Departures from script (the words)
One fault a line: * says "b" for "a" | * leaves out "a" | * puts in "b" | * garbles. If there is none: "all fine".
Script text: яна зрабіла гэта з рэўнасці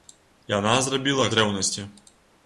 * leaves out "гэта"